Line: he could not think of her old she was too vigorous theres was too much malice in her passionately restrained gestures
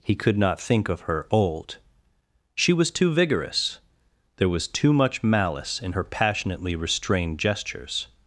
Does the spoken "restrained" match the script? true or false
true